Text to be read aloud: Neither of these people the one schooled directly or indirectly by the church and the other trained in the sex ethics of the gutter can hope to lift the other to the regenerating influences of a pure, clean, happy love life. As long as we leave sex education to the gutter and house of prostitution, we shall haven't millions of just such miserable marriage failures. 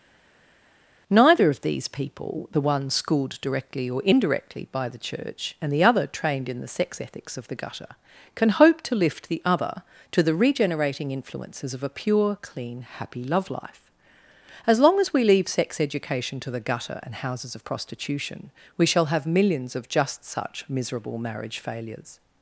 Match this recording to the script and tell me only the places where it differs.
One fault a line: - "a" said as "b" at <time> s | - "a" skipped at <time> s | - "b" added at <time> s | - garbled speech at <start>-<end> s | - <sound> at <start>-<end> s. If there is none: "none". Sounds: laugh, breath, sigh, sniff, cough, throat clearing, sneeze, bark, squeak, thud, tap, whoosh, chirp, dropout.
- "house" said as "houses" at 17.2 s
- "haven't" said as "have" at 19.1 s